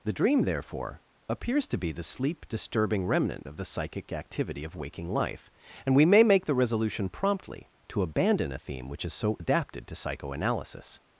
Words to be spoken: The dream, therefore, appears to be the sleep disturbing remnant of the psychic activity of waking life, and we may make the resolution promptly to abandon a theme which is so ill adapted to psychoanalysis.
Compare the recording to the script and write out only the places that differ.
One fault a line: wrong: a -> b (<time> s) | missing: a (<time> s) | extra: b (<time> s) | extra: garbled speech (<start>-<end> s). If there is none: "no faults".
missing: ill (9.4 s)